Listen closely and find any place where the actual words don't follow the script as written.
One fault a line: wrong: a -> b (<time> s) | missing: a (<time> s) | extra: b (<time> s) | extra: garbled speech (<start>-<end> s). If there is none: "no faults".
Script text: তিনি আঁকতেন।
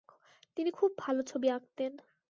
extra: খুব ভালো ছবি (0.7 s)